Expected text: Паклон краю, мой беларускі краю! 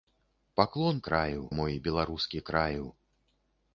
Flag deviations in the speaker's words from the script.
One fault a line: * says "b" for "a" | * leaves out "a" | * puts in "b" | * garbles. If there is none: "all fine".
all fine